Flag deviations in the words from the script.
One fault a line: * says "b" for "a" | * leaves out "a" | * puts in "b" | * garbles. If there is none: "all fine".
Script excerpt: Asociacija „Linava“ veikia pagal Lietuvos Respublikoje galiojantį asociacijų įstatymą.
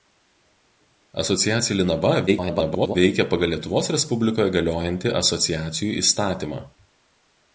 * garbles